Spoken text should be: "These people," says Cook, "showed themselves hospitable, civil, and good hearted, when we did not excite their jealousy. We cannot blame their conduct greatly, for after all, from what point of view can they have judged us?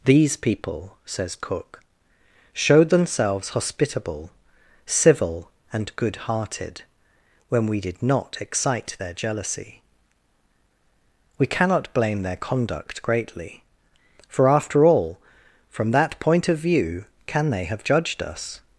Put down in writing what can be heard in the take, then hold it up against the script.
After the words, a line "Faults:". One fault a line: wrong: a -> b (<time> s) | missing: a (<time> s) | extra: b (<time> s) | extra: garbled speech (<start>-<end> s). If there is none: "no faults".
"These people," says Cook, "showed themselves hospitable, civil, and good hearted, when we did not excite their jealousy. We cannot blame their conduct greatly, for after all, from that point of view can they have judged us?
Faults:
wrong: what -> that (15.9 s)